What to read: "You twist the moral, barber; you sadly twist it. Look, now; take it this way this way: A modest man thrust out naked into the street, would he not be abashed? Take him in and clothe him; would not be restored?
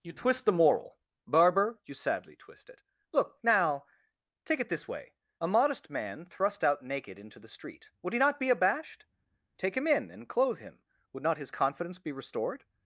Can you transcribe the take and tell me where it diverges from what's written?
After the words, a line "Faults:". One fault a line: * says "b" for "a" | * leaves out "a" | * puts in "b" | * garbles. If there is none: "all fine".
"You twist the moral, barber; you sadly twist it. Look, now; take it this way: A modest man thrust out naked into the street, would he not be abashed? Take him in and clothe him; would not his confidence be restored?
Faults:
* leaves out "this way"
* puts in "his confidence"